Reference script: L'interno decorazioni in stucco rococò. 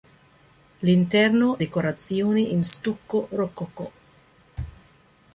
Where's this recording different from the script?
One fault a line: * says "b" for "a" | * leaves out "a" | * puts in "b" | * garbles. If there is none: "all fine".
all fine